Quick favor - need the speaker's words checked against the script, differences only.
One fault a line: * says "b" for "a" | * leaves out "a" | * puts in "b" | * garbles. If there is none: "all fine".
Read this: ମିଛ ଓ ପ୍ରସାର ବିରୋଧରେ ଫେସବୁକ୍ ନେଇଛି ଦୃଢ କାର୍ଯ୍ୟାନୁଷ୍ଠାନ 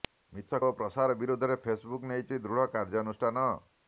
all fine